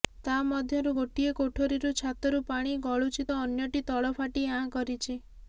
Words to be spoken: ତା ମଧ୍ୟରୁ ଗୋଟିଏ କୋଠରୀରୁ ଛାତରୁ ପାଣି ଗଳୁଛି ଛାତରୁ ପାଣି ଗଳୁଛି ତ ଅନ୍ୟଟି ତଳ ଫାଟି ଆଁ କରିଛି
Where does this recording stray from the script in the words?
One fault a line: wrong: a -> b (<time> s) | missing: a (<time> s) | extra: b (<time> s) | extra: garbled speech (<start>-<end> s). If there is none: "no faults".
missing: ଛାତରୁ ପାଣି ଗଳୁଛି (3.3 s)